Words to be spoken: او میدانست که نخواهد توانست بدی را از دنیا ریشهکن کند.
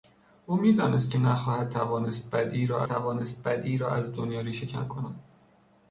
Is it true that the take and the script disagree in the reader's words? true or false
true